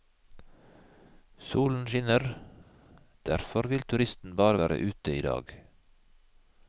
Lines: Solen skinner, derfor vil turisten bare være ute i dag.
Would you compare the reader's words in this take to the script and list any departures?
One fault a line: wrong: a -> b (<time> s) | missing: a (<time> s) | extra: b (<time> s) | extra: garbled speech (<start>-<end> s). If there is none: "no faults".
no faults